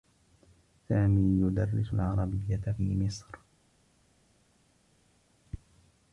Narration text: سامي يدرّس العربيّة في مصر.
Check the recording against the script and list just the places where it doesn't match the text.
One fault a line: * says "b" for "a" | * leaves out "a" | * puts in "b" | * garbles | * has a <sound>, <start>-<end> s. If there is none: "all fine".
all fine